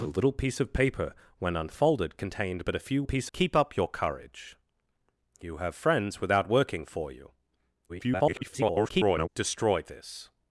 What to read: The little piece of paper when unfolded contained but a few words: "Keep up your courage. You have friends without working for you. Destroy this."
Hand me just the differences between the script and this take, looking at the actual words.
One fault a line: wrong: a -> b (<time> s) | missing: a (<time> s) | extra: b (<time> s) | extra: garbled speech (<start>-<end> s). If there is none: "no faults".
wrong: words -> piece (3.0 s)
extra: garbled speech (7.9-9.3 s)